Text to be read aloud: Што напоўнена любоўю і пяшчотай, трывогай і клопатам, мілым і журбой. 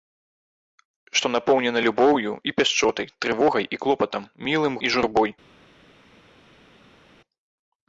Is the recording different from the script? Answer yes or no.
no